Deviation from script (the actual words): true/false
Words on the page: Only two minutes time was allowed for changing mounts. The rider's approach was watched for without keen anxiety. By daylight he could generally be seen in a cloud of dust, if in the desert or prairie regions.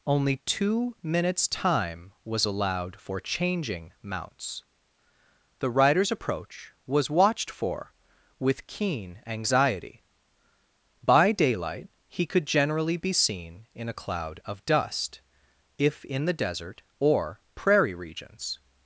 true